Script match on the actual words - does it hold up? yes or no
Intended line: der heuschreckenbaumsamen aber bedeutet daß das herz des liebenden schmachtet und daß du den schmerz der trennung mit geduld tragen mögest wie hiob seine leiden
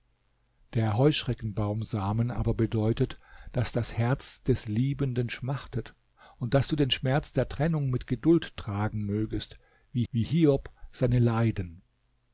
no